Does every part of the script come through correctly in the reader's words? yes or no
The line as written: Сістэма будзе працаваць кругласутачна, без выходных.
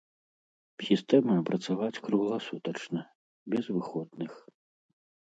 no